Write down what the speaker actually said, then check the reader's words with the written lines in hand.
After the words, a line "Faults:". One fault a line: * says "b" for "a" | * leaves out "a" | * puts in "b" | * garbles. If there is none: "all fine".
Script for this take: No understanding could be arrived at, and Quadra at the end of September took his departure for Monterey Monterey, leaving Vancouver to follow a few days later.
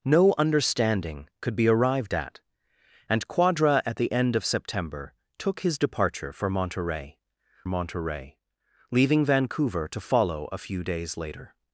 No understanding could be arrived at, and Quadra at the end of September took his departure for Monterey Monterey, leaving Vancouver to follow a few days later.
Faults:
all fine